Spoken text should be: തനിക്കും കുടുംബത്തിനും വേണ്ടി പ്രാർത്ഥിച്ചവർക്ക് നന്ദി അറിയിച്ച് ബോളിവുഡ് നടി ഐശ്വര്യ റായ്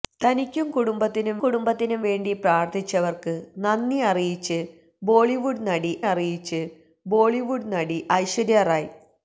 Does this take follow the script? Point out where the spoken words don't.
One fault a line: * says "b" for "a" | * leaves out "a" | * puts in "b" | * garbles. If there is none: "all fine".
* puts in "കുടുംബത്തിനും"
* puts in "അറിയിച്ച് ബോളിവുഡ് നടി"